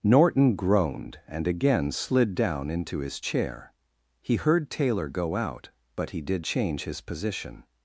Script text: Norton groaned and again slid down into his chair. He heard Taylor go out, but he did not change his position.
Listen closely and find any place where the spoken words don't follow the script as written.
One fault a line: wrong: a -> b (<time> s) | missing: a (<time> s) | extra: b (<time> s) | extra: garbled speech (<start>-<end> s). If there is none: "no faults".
missing: not (6.5 s)